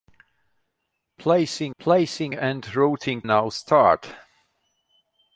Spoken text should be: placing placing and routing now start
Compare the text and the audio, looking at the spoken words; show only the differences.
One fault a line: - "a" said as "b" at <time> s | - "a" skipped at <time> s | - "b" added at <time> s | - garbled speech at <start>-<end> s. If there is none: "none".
none